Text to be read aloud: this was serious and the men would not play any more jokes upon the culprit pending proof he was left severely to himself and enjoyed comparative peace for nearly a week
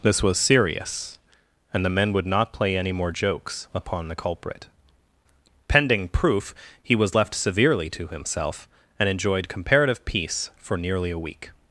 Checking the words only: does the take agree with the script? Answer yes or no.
yes